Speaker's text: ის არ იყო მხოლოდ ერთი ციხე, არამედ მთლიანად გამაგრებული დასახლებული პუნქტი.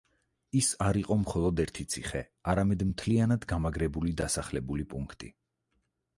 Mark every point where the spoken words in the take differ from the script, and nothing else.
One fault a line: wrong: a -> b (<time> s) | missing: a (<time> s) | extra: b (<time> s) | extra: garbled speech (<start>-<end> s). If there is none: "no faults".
no faults